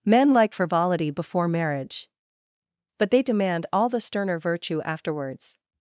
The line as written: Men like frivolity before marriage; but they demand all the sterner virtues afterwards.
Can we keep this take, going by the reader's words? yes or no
no